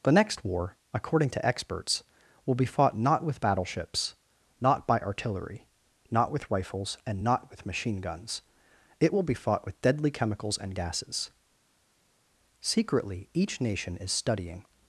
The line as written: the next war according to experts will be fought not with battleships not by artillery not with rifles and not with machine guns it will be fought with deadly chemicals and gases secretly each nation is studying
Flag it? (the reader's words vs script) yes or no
no